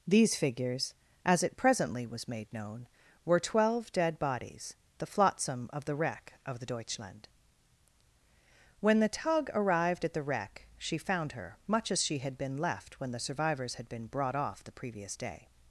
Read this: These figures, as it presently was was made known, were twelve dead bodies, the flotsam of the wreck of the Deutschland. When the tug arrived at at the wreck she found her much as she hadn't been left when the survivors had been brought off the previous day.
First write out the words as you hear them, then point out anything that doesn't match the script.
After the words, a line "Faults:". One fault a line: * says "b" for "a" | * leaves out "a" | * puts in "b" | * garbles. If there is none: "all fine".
These figures, as it presently was made known, were twelve dead bodies, the flotsam of the wreck of the Deutschland. When the tug arrived at the wreck she found her much as she had been left when the survivors had been brought off the previous day.
Faults:
* leaves out "was"
* leaves out "at"
* says "had" for "hadn't"